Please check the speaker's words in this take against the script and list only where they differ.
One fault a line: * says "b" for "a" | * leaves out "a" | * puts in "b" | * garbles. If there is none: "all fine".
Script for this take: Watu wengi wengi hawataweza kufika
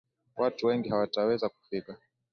* leaves out "wengi"